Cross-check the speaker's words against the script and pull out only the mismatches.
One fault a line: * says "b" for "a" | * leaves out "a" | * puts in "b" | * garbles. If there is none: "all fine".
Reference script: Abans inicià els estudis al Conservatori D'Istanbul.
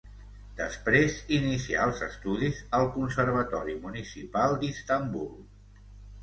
* says "Després" for "Abans"
* puts in "Municipal"